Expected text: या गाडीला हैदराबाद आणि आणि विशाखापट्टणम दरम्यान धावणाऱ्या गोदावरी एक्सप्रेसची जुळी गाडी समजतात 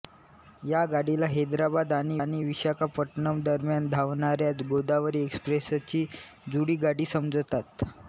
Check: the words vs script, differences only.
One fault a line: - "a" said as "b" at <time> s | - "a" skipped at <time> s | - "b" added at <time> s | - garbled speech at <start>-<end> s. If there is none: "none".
none